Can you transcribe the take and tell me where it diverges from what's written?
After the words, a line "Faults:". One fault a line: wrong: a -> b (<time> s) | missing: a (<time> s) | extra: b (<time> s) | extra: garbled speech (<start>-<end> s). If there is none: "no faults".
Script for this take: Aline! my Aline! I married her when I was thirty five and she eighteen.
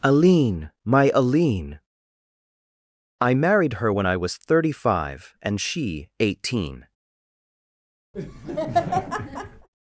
Aline! my Aline! I married her when I was thirty five and she eighteen.
Faults:
no faults